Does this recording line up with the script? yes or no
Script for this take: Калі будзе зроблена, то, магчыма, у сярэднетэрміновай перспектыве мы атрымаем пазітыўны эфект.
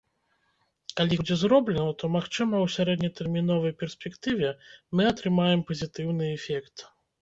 yes